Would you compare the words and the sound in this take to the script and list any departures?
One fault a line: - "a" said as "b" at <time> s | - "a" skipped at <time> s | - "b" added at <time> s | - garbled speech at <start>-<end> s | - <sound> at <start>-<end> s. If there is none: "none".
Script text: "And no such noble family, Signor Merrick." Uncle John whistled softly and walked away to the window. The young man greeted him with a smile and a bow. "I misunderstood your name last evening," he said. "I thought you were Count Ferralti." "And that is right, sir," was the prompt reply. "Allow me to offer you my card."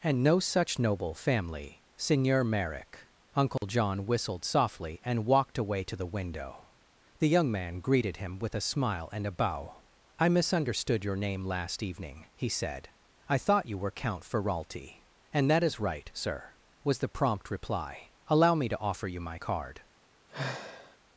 - dropout at 3.6-3.6 s
- sigh at 20.3-21.0 s